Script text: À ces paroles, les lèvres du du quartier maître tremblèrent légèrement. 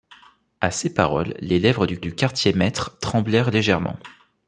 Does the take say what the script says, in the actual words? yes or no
yes